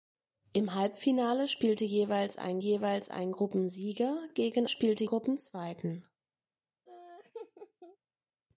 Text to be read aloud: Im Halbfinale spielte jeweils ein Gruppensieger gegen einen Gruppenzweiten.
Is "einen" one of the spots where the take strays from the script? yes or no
yes